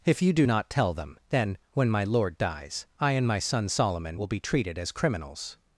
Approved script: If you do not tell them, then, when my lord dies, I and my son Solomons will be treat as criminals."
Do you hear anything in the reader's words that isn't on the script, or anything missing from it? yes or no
yes